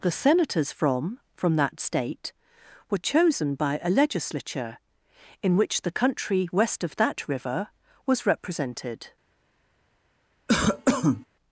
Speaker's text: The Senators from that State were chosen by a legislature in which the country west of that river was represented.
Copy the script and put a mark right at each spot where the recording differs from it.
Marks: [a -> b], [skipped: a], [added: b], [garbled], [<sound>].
The Senators from [added: from] that State were chosen by a legislature in which the country west of that river was represented. [cough]